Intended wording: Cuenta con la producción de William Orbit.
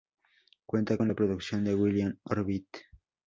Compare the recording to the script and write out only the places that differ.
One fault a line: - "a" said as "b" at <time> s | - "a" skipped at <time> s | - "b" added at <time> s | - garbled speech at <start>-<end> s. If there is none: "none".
none